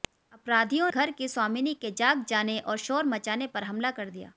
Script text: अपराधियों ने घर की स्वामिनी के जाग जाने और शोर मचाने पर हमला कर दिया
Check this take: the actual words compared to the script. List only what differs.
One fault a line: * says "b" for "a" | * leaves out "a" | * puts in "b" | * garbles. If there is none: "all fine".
* leaves out "ने"